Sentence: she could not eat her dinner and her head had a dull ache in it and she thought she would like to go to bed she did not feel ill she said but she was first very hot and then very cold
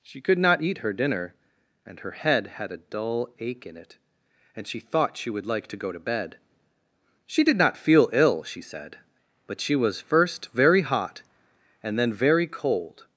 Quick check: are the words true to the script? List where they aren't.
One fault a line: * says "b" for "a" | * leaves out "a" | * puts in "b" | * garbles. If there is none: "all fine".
all fine